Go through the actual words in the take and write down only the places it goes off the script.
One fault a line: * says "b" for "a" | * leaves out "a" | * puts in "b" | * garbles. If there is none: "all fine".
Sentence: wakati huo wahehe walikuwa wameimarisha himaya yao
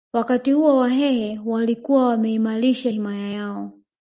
all fine